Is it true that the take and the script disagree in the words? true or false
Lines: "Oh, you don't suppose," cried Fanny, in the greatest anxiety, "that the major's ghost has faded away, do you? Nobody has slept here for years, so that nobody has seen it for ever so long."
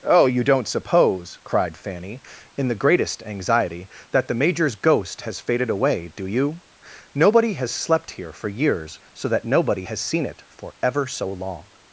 false